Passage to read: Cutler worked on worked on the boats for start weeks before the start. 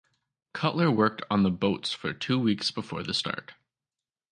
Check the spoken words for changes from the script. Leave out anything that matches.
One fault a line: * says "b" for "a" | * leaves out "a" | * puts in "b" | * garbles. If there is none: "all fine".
* leaves out "worked on"
* says "two" for "start"